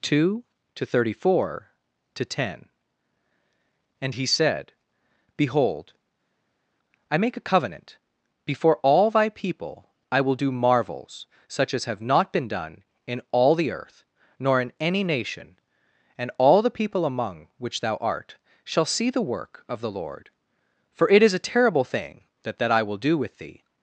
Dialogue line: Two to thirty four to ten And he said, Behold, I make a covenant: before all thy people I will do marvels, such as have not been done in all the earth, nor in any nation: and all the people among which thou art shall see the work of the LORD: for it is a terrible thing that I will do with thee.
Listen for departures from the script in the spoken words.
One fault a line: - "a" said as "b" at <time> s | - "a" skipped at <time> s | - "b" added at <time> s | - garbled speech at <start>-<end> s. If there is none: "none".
- "that" added at 22.6 s